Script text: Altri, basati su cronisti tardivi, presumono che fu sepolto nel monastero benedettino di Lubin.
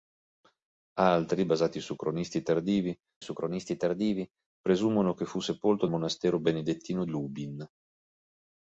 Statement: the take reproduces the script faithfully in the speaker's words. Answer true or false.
false